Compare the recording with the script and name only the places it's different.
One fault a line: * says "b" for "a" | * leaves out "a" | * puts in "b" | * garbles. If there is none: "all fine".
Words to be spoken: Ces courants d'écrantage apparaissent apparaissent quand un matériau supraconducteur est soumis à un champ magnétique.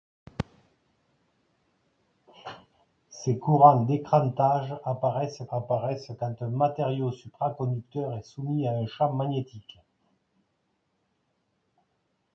all fine